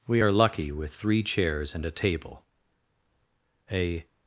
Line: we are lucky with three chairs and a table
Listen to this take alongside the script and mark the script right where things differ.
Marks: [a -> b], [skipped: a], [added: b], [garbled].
we are lucky with three chairs and a table [added: a]